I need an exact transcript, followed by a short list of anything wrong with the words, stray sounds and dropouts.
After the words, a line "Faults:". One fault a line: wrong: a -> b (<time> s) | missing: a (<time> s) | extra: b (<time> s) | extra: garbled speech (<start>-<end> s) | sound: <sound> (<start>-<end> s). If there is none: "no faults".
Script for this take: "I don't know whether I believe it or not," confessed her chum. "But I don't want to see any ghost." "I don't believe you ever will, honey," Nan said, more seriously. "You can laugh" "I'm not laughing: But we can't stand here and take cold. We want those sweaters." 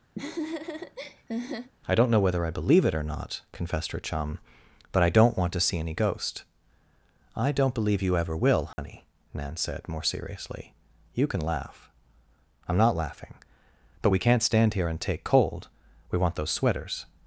"I don't know whether I believe it or not," confessed her chum. "But I don't want to see any ghost." "I don't believe you ever will, honey," Nan said, more seriously. "You can laugh" "I'm not laughing: But we can't stand here and take cold. We want those sweaters."
Faults:
sound: laugh (0.2-1.7 s)
sound: dropout (8.7-8.8 s)